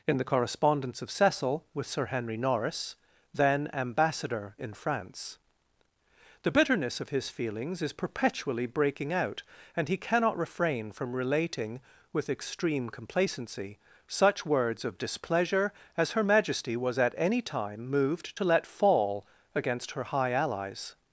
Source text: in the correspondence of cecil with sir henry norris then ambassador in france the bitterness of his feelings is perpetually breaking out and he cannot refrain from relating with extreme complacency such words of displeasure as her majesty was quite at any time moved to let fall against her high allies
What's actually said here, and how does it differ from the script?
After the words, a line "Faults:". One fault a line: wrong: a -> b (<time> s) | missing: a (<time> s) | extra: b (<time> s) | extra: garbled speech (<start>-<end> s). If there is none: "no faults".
in the correspondence of cecil with sir henry norris then ambassador in france the bitterness of his feelings is perpetually breaking out and he cannot refrain from relating with extreme complacency such words of displeasure as her majesty was at any time moved to let fall against her high allies
Faults:
missing: quite (17.0 s)